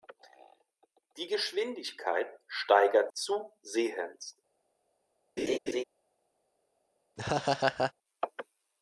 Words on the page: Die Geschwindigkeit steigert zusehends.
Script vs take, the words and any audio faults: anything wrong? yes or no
yes